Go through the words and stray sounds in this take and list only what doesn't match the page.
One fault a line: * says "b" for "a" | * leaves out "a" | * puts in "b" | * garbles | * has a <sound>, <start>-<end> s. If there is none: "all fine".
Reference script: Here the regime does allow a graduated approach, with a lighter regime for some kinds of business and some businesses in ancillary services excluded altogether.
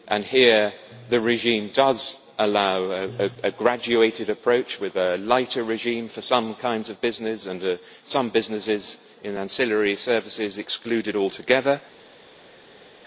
all fine